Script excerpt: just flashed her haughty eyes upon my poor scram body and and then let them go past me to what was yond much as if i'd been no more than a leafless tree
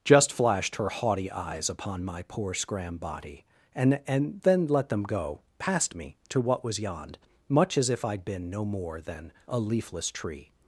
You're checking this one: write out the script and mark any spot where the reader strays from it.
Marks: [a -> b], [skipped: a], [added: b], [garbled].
just flashed her haughty eyes upon my poor scram body and and then let them go past me to what was yond much as if i'd been no more than a leafless tree